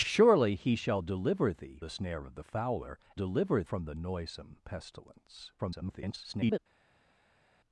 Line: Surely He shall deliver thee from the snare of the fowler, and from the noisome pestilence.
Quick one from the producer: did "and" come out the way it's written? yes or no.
no